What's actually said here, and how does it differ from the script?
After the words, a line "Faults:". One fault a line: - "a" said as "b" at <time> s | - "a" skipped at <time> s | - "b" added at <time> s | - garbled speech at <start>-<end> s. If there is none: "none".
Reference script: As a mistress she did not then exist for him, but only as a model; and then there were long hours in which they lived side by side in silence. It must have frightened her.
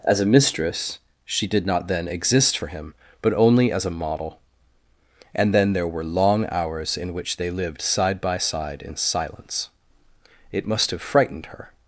As a mistress she did not then exist for him, but only as a model; and then there were long hours in which they lived side by side in silence. It must have frightened her.
Faults:
none